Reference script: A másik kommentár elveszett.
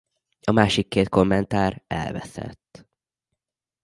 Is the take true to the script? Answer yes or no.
no